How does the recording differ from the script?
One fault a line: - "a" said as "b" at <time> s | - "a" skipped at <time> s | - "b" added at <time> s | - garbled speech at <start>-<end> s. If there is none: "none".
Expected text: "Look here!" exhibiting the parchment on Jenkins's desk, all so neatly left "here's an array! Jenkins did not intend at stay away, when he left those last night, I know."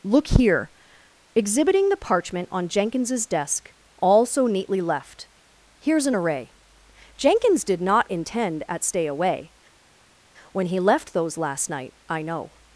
none